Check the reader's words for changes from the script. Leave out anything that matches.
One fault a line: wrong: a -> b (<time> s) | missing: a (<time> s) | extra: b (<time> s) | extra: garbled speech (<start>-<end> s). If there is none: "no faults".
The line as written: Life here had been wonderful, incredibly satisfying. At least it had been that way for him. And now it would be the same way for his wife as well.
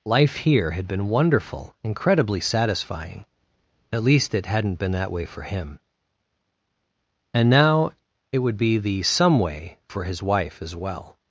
wrong: had -> hadn't (4.5 s)
wrong: same -> some (9.0 s)